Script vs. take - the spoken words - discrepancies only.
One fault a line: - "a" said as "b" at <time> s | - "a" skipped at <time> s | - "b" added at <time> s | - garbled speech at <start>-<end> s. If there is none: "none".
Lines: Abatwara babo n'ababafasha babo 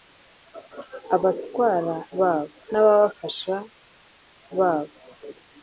none